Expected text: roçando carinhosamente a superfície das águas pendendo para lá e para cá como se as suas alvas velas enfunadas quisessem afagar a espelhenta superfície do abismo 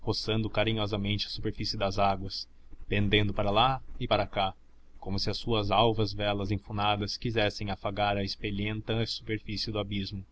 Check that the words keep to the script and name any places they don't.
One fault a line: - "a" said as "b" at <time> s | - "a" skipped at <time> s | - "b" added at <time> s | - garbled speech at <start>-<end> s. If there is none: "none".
none